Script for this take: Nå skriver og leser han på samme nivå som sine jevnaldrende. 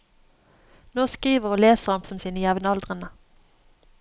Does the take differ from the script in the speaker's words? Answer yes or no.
yes